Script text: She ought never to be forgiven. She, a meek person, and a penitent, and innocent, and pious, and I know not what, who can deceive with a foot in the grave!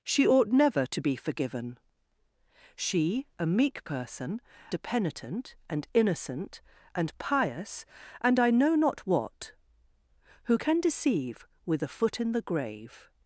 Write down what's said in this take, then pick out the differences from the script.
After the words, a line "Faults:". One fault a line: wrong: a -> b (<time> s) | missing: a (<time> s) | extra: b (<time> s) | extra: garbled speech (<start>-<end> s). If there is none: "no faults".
She ought never to be forgiven. She, a meek person, a penitent, and innocent, and pious, and I know not what, who can deceive with a foot in the grave!
Faults:
missing: and (4.4 s)